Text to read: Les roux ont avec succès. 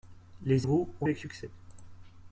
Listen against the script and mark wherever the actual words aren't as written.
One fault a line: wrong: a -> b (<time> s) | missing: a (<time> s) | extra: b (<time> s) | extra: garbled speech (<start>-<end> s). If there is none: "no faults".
no faults